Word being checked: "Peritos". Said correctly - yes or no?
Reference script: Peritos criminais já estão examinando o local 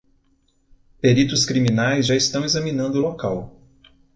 yes